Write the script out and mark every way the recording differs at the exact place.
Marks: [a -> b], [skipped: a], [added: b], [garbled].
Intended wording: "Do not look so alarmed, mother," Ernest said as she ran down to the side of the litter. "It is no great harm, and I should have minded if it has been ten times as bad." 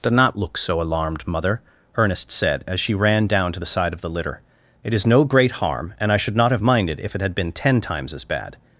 "Do not look so alarmed, mother," Ernest said as she ran down to the side of the litter. "It is no great harm, and I should [added: not] have minded if it [has -> had] been ten times as bad."